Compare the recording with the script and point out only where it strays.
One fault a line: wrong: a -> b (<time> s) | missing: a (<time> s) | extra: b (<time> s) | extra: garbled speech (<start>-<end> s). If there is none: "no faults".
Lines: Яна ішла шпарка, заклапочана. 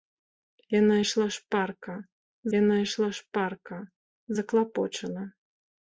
extra: яна ішла шпарка (2.6 s)